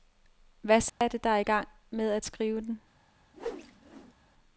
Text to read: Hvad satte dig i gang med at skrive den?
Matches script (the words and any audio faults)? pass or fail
fail